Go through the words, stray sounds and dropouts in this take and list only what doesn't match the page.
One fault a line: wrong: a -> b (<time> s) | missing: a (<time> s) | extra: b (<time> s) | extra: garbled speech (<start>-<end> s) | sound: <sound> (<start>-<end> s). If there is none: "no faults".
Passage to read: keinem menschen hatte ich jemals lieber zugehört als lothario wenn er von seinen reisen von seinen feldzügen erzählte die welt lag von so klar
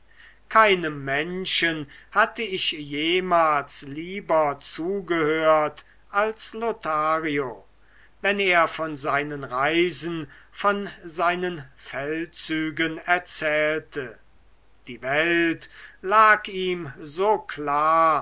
wrong: von -> ihm (16.5 s)